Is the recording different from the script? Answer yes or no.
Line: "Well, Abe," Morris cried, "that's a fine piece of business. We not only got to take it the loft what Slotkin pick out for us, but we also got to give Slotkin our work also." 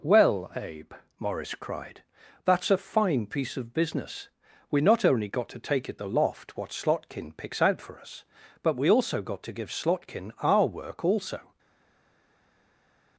yes